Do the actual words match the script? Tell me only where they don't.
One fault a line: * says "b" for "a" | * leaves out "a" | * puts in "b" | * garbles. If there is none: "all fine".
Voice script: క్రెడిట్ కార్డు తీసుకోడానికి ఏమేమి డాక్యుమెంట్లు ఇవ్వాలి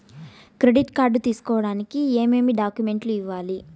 all fine